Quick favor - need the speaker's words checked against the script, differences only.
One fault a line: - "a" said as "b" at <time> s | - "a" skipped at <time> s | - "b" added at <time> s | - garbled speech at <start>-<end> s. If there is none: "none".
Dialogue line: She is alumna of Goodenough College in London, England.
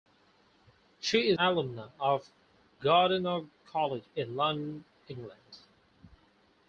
none